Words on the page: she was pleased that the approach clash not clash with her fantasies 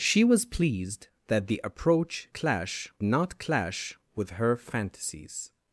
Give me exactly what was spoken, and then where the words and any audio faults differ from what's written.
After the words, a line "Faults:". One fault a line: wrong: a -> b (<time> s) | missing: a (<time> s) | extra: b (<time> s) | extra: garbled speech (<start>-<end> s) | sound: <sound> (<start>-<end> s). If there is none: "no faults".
she was pleased that the approach clash not clash with her fantasies
Faults:
no faults